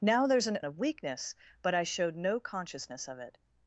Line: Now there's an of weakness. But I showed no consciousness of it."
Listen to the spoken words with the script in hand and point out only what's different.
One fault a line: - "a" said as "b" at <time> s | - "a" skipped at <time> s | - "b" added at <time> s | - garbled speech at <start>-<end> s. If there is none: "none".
none